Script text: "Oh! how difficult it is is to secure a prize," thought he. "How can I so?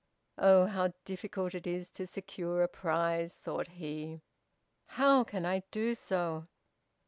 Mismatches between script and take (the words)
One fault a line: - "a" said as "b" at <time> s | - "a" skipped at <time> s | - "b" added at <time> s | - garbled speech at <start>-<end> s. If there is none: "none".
- "is" skipped at 1.9 s
- "do" added at 5.7 s